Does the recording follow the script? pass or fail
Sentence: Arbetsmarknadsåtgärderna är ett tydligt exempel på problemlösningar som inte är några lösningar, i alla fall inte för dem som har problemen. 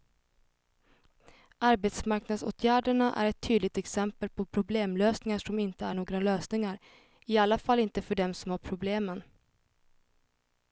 pass